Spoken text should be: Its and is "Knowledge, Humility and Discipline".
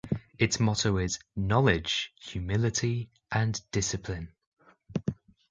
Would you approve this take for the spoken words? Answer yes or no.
no